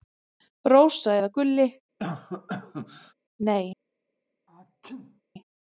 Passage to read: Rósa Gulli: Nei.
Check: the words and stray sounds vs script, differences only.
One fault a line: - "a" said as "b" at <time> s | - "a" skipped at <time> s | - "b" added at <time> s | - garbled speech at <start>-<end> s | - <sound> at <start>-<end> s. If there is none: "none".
- "eða" added at 1.2 s
- cough at 2.0-3.1 s
- sneeze at 4.5-5.2 s